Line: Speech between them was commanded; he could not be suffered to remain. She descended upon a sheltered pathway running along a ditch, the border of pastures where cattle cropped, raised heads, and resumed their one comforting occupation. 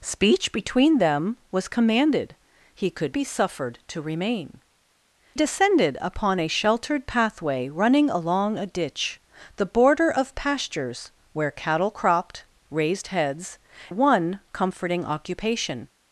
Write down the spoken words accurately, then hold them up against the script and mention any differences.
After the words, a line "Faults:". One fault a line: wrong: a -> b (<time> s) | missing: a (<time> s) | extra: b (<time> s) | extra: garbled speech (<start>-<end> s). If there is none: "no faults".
Speech between them was commanded; he could be suffered to remain. Descended upon a sheltered pathway running along a ditch, the border of pastures where cattle cropped, raised heads, one comforting occupation.
Faults:
missing: not (3.1 s)
missing: She (4.6 s)
missing: and resumed their (13.6 s)